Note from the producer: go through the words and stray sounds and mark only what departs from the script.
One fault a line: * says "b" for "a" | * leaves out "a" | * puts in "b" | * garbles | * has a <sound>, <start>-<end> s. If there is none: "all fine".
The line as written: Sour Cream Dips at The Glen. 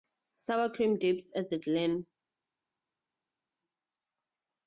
all fine